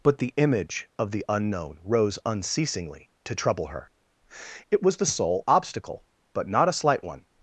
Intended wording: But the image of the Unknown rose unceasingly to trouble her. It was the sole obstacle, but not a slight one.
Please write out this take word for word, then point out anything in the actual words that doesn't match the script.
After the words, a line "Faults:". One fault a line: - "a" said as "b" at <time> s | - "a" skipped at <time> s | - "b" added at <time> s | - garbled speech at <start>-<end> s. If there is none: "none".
But the image of the Unknown rose unceasingly to trouble her. It was the sole obstacle, but not a slight one.
Faults:
none